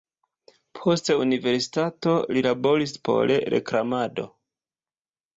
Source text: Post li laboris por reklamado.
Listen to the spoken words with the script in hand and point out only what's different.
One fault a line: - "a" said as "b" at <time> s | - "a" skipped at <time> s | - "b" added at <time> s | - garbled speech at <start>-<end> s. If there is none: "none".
- "universitato" added at 1.2 s